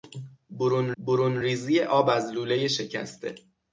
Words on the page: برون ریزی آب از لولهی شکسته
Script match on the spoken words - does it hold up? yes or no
no